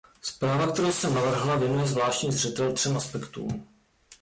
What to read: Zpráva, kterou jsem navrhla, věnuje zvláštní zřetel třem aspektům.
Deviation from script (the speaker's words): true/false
false